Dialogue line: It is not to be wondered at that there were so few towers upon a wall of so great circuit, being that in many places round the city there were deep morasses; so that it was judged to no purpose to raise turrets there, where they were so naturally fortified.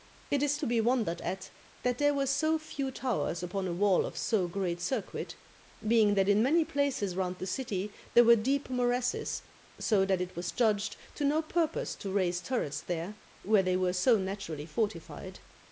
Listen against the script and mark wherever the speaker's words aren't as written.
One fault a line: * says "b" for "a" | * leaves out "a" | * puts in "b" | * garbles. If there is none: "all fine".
* leaves out "not"